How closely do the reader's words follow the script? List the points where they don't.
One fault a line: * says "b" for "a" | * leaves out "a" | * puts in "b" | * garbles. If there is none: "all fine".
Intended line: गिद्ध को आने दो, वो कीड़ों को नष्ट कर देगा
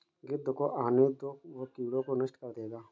all fine